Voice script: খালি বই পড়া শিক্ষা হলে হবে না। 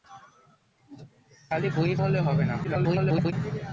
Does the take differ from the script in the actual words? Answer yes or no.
yes